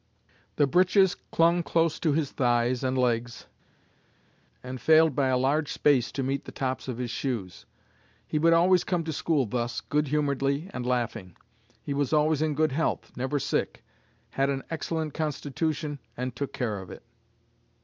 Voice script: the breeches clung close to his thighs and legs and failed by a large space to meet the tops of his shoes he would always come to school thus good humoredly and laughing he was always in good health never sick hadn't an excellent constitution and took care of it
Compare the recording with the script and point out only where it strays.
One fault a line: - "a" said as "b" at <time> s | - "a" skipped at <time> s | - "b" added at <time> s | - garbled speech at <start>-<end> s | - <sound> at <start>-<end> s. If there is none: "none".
- "hadn't" said as "had" at 14.3 s